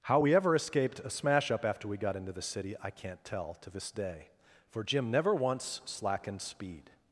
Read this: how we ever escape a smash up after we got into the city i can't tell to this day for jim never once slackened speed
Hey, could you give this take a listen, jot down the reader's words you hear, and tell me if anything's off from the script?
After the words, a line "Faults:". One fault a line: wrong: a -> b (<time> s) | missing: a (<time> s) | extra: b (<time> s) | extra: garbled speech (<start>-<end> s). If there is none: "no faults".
how we ever escaped a smash up after we got into the city i can't tell to this day for jim never once slackened speed
Faults:
wrong: escape -> escaped (0.5 s)